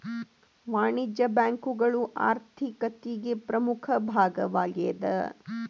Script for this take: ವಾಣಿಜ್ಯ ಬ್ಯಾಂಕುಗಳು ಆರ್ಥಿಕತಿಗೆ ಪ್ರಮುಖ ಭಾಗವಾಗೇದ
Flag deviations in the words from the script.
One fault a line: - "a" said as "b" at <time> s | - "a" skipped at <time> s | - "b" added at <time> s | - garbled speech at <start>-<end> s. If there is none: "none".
none